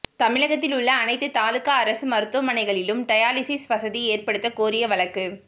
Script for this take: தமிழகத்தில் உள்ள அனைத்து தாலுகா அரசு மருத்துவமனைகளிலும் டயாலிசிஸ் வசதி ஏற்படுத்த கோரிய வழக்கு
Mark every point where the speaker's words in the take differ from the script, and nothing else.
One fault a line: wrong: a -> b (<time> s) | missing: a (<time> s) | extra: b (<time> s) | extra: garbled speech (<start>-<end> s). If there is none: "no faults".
no faults